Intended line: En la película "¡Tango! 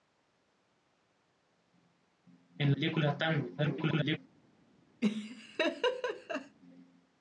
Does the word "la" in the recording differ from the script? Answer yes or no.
yes